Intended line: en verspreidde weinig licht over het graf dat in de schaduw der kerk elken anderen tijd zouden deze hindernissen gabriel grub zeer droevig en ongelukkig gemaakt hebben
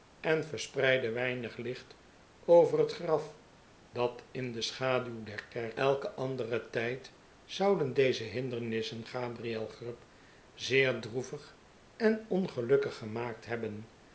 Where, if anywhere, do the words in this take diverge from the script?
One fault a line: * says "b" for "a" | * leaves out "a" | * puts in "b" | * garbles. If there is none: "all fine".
all fine